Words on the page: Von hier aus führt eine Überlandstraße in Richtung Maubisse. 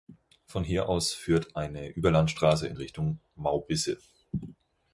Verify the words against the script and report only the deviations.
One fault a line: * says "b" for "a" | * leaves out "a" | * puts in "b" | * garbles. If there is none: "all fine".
all fine